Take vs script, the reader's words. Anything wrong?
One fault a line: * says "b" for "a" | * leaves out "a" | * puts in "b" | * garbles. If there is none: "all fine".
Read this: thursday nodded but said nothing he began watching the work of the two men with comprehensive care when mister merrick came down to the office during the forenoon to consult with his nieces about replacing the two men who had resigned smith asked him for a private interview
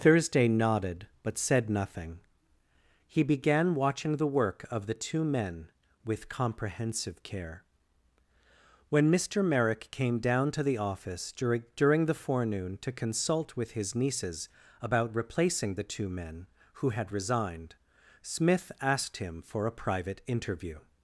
* puts in "during"